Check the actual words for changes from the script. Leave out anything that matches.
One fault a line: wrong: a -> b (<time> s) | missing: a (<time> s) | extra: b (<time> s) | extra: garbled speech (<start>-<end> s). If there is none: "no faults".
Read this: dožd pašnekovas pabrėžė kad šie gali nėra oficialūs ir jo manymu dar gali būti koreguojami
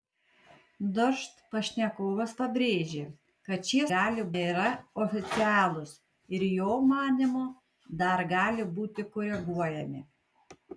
no faults